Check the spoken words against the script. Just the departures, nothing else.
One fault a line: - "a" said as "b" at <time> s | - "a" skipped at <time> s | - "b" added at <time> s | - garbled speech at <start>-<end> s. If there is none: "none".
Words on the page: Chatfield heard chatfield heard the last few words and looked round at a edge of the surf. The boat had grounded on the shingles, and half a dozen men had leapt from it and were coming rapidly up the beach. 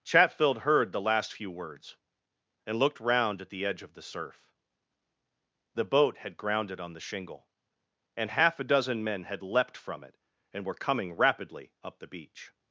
- "chatfield heard" skipped at 0.9 s
- "a" said as "the" at 3.5 s
- "shingles" said as "shingle" at 7.0 s